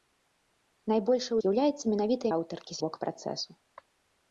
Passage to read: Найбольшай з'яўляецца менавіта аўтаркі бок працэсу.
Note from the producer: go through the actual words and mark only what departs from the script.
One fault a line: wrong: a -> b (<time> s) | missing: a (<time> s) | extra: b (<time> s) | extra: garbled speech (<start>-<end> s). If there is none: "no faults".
no faults